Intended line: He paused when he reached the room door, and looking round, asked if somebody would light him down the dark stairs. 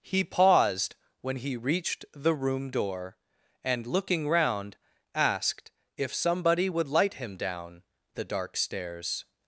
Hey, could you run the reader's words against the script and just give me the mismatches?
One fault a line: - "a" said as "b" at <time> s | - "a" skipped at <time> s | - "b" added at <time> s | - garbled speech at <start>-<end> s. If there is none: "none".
none